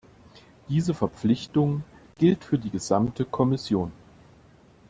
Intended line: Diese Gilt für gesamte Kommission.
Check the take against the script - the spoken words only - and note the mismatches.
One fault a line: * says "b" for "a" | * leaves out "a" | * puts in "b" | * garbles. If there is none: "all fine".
* puts in "Verpflichtung"
* puts in "die"